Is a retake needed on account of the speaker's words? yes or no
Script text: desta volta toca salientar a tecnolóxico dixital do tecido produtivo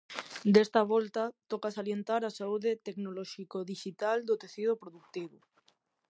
yes